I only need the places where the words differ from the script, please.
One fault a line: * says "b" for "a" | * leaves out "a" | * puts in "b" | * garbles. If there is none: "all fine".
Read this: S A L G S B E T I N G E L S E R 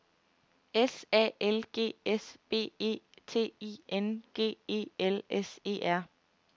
all fine